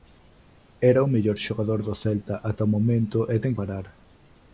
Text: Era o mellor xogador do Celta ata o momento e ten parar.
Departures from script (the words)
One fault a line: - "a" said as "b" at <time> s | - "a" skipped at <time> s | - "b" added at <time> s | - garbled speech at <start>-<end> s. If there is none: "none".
none